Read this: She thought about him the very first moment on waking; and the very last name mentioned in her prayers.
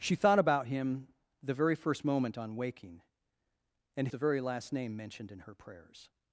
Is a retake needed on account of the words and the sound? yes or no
no